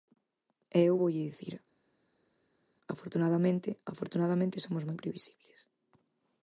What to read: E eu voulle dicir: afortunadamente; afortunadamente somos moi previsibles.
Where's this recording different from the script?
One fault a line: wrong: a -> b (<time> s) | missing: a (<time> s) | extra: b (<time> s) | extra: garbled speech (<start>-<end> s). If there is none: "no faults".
no faults